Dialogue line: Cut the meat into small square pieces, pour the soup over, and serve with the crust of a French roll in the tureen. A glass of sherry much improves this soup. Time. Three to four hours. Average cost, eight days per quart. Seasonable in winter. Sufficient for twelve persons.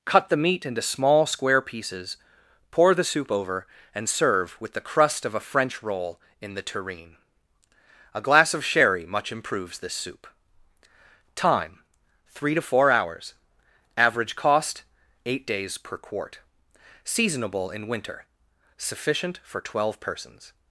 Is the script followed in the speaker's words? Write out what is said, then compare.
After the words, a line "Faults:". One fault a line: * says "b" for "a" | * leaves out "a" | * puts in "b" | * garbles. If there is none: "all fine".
Cut the meat into small square pieces, pour the soup over, and serve with the crust of a French roll in the tureen. A glass of sherry much improves this soup. Time. Three to four hours. Average cost, eight days per quart. Seasonable in winter. Sufficient for twelve persons.
Faults:
all fine